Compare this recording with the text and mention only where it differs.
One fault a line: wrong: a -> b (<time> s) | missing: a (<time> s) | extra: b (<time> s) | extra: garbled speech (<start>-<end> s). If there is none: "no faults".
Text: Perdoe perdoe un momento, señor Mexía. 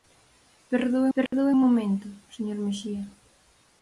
no faults